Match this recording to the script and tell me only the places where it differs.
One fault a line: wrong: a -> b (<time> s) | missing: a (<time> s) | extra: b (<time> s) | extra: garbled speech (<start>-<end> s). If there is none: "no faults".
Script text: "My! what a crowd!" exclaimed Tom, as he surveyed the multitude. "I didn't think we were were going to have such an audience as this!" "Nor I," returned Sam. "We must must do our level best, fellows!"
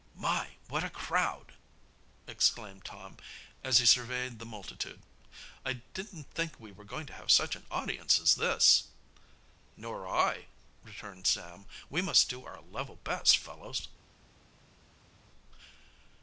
missing: were (6.8 s)
missing: must (12.3 s)